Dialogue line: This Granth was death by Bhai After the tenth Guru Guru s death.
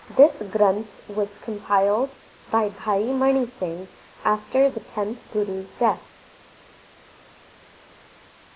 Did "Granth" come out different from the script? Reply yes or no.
no